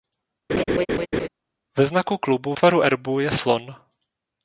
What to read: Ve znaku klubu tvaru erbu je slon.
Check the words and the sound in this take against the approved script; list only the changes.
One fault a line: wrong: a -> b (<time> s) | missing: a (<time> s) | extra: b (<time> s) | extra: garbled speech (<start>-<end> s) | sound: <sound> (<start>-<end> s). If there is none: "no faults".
sound: laugh (0.5-1.3 s)